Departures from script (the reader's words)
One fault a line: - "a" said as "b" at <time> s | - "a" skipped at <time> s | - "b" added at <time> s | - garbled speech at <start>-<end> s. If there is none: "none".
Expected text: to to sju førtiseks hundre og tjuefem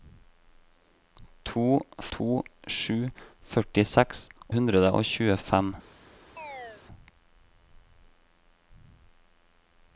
none